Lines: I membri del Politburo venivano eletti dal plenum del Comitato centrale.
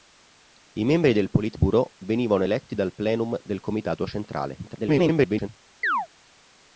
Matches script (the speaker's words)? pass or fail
fail